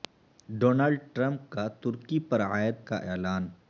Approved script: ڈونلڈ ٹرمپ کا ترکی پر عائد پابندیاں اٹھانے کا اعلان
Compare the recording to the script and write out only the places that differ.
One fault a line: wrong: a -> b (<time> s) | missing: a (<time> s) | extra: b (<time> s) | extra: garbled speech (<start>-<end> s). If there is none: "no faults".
missing: پابندیاں اٹھانے (2.8 s)